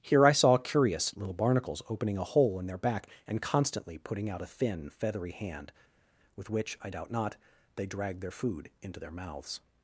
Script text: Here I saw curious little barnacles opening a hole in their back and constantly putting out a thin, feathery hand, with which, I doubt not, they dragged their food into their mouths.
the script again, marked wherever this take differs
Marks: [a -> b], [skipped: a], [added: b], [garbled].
Here I saw curious little barnacles opening a hole in their back and constantly putting out a thin, feathery hand, with which, I doubt not, they dragged their food into their mouths.